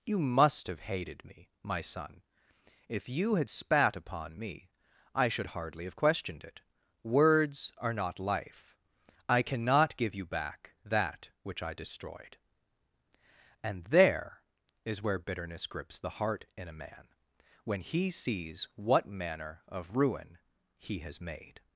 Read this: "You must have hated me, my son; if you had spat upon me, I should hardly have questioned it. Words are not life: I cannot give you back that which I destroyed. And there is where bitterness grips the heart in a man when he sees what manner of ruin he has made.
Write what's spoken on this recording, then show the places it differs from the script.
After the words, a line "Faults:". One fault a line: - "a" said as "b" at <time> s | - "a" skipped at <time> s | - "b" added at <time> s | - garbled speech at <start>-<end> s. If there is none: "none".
"You must have hated me, my son; if you had spat upon me, I should hardly have questioned it. Words are not life: I cannot give you back that which I destroyed. And there is where bitterness grips the heart in a man when he sees what manner of ruin he has made.
Faults:
none